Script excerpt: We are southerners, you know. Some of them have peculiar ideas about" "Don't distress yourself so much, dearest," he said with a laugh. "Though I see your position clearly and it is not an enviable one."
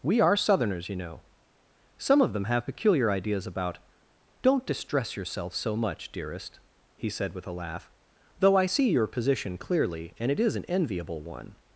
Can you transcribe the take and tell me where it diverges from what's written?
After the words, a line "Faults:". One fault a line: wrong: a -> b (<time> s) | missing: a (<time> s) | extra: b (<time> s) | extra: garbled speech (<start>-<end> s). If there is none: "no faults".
We are southerners, you know. Some of them have peculiar ideas about" "Don't distress yourself so much, dearest," he said with a laugh. "Though I see your position clearly and it is an enviable one."
Faults:
missing: not (10.6 s)